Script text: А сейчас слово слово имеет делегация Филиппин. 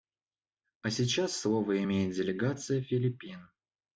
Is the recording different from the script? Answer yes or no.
yes